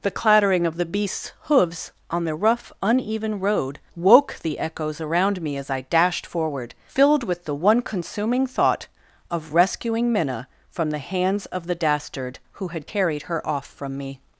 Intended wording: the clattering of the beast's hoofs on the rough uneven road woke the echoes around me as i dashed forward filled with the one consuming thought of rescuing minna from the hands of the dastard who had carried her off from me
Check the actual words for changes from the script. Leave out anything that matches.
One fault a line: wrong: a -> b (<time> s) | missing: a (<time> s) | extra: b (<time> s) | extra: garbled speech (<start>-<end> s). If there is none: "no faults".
no faults